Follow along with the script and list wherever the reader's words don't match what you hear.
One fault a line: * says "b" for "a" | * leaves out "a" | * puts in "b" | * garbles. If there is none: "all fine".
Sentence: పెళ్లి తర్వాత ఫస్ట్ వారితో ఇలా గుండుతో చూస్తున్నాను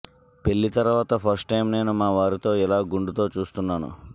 * puts in "టైం నేను మా"